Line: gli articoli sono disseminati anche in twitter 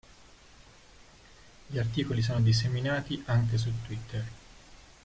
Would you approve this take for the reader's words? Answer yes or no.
no